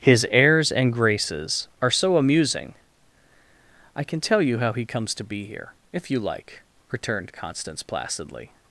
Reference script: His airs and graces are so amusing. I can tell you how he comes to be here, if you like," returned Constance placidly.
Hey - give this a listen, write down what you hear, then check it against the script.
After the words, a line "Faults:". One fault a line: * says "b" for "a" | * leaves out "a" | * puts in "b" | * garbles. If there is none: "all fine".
His airs and graces are so amusing. I can tell you how he comes to be here, if you like," returned Constance placidly.
Faults:
all fine